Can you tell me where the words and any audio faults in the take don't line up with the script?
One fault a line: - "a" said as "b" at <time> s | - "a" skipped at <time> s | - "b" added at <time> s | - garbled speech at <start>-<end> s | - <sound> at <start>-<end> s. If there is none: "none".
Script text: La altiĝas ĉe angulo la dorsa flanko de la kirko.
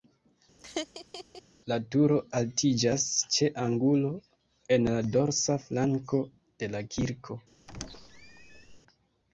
- laugh at 0.6-1.4 s
- "turo" added at 1.9 s
- "en" added at 4.8 s
- squeak at 7.7-8.8 s